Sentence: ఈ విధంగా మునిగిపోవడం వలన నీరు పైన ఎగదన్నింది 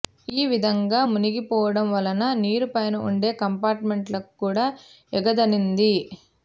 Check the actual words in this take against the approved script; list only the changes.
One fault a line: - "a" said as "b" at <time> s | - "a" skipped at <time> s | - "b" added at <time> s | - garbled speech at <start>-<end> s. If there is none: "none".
- "ఉండే కంపార్ట్మెంట్లకు కూడా" added at 3.1 s